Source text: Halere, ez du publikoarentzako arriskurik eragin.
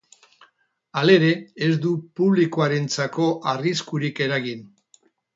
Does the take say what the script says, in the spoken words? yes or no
yes